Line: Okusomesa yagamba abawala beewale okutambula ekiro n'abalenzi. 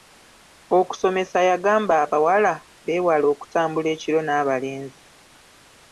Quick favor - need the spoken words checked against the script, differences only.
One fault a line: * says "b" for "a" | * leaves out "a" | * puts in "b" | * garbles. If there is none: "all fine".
all fine